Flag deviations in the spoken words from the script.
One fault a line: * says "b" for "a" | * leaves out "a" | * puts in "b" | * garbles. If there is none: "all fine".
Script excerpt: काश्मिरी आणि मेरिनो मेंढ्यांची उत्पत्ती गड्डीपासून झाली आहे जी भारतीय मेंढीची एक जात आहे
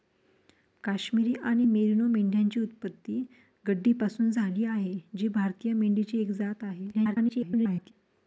* garbles